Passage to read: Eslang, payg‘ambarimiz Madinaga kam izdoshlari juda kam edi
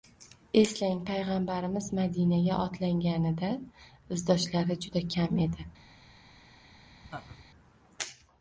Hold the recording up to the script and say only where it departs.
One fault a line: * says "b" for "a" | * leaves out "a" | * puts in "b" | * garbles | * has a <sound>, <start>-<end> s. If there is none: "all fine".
* says "otlanganida" for "kam"
* has a laugh, 7.0-7.4 s